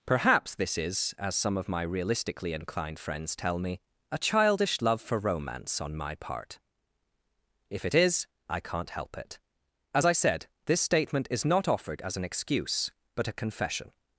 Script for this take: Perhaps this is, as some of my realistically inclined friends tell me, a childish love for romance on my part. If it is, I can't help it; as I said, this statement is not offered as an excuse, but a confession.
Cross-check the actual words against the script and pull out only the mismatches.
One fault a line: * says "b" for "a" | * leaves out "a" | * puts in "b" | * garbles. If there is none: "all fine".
all fine